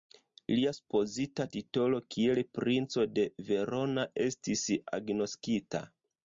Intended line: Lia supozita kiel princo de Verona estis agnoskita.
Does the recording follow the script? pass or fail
fail